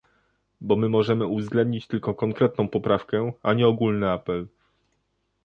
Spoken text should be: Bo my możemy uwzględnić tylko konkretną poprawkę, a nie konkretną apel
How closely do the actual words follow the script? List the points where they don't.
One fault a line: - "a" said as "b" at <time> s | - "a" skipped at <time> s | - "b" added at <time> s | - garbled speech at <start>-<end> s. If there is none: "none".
- "konkretną" said as "ogólny" at 3.7 s